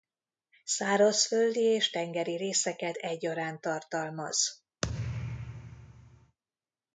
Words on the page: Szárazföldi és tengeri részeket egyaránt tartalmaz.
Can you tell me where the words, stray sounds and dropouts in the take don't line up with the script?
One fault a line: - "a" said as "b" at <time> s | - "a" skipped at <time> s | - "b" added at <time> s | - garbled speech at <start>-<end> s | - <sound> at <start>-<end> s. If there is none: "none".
- thud at 4.8-6.4 s